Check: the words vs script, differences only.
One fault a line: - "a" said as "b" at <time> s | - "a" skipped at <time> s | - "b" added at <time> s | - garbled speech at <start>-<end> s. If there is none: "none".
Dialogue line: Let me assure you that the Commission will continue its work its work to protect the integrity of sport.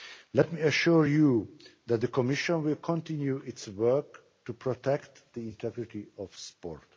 - "its work" skipped at 4.2 s